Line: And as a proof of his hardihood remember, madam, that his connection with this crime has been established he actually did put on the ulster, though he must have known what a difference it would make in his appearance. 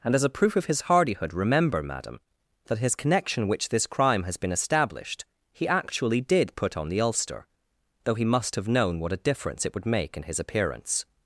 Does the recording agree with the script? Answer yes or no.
no